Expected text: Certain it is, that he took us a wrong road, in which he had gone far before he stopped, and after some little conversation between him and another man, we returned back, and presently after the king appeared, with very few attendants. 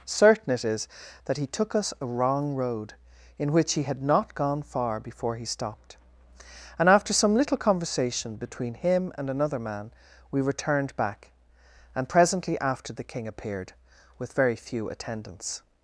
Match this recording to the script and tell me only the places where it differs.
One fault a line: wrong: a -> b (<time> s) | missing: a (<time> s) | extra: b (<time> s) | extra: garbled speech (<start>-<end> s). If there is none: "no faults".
extra: not (4.0 s)